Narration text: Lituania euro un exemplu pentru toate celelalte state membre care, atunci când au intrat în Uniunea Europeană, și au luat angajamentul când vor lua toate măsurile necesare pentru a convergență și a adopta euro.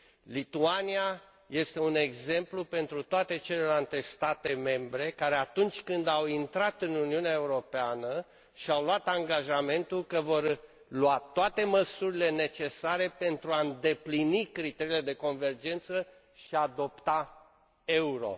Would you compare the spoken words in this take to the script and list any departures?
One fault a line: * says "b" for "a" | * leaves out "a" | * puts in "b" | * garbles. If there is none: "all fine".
* says "este" for "euro"
* says "că" for "când"
* puts in "îndeplini criteriile de"